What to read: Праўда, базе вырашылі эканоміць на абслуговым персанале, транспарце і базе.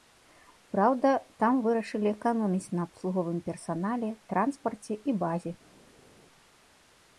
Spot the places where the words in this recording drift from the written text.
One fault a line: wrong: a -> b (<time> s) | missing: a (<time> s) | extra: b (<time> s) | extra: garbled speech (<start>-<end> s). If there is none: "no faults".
wrong: базе -> там (1.4 s)